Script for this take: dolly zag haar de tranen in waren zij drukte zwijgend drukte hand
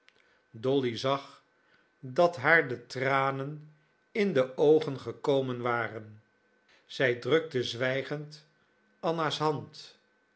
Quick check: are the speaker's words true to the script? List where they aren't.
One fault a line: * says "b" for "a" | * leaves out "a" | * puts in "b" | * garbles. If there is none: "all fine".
* puts in "dat"
* puts in "de oogen gekomen"
* says "anna's" for "drukte"